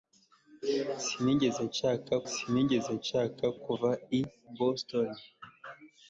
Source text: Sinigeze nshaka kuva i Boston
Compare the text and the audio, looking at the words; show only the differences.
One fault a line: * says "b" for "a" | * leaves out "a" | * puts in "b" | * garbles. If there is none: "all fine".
* puts in "sinigeze nshaka"